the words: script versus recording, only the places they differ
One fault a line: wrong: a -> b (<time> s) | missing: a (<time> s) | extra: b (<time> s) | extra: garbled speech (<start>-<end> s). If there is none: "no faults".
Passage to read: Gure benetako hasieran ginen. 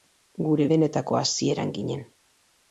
no faults